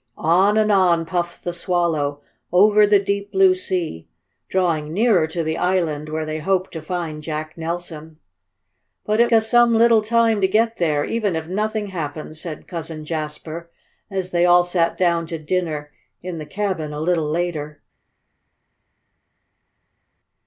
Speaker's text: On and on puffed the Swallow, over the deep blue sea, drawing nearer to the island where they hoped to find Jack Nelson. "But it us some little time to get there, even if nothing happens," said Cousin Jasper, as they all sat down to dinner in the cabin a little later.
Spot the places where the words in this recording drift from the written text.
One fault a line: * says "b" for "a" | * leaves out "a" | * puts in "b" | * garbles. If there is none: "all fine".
all fine